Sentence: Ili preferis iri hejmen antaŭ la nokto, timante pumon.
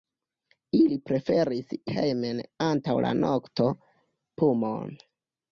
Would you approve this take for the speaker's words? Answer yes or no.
no